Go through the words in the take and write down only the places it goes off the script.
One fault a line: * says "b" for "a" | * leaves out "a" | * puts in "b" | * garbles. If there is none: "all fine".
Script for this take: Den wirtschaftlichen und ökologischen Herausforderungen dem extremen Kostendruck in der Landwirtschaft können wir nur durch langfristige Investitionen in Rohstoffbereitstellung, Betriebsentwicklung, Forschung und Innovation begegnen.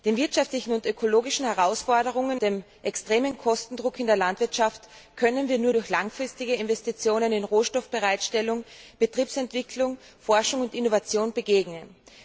all fine